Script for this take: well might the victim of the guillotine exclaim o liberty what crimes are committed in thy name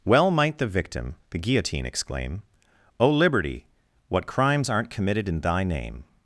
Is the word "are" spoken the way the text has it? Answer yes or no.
no